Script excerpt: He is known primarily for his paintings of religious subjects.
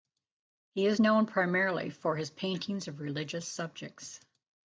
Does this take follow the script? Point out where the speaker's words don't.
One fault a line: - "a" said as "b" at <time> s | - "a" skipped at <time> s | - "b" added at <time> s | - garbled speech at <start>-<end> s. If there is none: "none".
none